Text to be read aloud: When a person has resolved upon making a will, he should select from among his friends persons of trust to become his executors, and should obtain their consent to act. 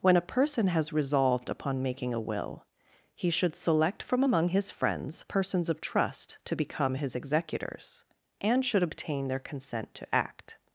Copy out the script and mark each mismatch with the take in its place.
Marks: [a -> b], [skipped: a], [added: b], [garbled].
When a person has resolved upon making a will, he should select from among his friends persons of trust to become his executors, and should obtain their consent to act.